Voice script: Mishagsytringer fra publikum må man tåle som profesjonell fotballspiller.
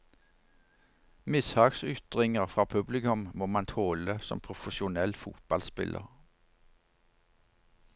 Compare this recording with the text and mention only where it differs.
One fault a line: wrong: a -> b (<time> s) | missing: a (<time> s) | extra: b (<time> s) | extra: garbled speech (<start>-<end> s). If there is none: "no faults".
no faults